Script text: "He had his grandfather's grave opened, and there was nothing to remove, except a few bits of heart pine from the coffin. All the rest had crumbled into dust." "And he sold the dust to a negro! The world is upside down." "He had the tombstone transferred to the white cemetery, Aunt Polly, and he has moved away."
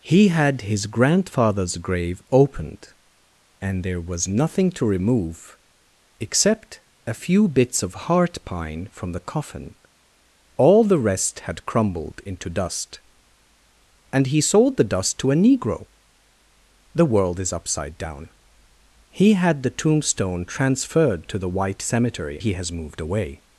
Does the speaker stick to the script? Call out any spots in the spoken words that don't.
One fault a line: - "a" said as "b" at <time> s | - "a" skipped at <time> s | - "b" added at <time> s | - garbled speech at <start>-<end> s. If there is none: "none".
- "Aunt Polly and" skipped at 22.4 s